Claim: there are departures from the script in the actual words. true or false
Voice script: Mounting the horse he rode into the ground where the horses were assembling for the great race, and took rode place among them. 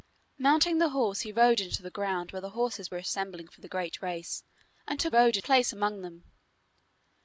false